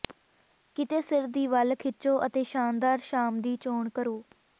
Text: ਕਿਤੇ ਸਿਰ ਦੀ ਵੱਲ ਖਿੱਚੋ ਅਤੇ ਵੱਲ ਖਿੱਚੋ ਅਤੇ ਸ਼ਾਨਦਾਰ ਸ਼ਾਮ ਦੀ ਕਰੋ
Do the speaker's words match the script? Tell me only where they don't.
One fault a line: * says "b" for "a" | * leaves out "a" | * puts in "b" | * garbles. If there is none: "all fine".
* leaves out "ਵੱਲ ਖਿੱਚੋ ਅਤੇ"
* puts in "ਚੋਣ"